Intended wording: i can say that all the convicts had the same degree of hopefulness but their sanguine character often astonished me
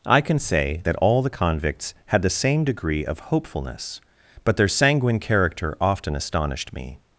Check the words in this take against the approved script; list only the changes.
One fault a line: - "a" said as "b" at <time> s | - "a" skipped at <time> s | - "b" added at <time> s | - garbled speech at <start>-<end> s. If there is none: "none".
none